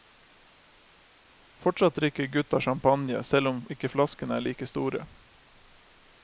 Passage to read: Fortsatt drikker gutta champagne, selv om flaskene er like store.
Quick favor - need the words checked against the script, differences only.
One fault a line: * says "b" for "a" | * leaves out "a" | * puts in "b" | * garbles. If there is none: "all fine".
* puts in "ikke"